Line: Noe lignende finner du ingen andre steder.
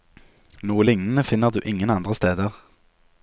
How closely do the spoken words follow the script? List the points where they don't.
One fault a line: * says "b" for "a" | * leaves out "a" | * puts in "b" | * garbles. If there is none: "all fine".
all fine